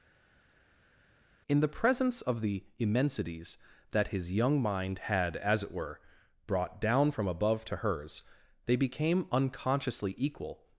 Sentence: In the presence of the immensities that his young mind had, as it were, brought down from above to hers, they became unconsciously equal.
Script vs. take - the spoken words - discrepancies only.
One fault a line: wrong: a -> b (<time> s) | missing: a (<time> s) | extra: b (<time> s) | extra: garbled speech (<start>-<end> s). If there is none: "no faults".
no faults